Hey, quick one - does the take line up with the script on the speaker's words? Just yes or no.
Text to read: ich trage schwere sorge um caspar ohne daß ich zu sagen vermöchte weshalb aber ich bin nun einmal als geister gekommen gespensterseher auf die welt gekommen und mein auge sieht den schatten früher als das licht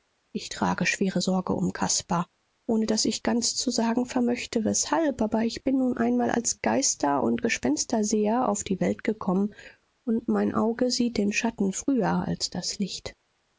no